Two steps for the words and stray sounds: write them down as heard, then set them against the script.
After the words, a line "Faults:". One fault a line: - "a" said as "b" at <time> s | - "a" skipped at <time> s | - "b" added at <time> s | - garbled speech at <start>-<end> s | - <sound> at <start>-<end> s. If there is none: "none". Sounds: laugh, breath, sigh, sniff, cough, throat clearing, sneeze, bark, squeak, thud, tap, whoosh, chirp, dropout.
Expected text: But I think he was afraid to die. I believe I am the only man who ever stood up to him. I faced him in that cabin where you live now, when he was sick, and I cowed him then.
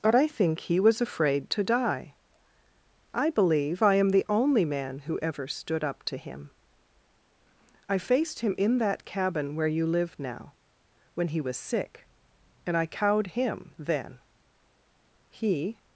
But I think he was afraid to die. I believe I am the only man who ever stood up to him. I faced him in that cabin where you live now, when he was sick, and I cowed him then. He
Faults:
- "He" added at 15.3 s